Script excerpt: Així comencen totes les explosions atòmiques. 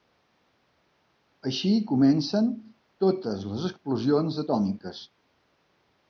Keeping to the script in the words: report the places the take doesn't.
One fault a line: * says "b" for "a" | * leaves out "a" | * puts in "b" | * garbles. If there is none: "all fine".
all fine